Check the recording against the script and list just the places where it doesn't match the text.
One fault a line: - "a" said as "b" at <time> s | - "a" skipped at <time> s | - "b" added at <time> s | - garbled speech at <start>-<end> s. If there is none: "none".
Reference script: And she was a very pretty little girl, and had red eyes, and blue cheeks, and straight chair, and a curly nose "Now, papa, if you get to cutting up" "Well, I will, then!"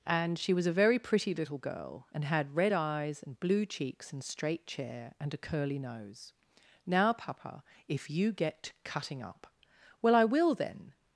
none